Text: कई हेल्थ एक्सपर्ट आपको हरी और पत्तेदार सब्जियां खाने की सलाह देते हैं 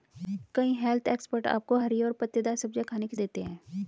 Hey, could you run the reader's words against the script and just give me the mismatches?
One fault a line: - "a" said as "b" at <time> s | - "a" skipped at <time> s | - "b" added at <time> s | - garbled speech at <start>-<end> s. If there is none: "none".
- "सलाह" skipped at 3.2 s